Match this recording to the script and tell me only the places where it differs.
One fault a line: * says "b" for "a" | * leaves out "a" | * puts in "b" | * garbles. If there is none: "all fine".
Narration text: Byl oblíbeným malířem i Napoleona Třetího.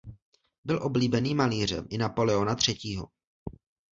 all fine